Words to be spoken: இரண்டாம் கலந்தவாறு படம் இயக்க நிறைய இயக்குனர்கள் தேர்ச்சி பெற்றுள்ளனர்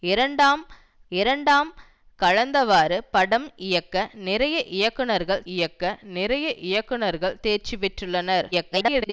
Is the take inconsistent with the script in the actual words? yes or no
yes